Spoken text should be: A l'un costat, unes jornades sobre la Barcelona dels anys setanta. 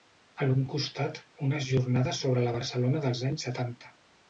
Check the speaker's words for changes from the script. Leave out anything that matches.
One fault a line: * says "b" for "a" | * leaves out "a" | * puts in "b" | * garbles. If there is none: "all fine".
all fine